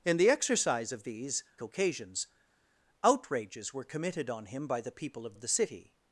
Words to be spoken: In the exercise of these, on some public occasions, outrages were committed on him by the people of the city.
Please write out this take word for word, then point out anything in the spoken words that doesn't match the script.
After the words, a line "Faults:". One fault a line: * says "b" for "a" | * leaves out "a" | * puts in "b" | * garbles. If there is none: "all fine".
In the exercise of these, occasions, outrages were committed on him by the people of of the city.
Faults:
* leaves out "on some public"
* puts in "of"